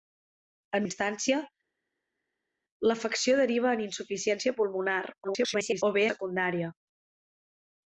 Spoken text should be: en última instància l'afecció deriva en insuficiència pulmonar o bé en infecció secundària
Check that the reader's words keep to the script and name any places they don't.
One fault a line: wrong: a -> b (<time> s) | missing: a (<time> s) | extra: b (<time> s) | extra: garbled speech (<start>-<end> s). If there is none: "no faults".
missing: última (0.8 s)
extra: garbled speech (5.2-5.8 s)
missing: en infecció (6.0 s)